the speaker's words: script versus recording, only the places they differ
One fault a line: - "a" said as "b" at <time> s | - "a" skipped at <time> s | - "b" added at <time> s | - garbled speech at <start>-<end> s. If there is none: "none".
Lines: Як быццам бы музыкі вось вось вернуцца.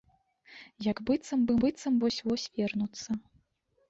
- "музыкі" said as "быццам" at 1.6 s